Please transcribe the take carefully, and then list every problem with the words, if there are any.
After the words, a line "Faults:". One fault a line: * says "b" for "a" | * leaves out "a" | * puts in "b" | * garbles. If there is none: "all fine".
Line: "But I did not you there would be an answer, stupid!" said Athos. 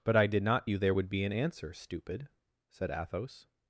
"But I did not you there would be an answer, stupid!" said Athos.
Faults:
all fine